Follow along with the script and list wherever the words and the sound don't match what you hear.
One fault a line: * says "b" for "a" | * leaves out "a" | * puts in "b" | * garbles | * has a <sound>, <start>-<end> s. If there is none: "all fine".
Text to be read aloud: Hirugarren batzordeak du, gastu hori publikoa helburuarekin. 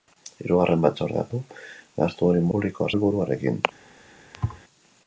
* has a thud, 4.3-4.6 s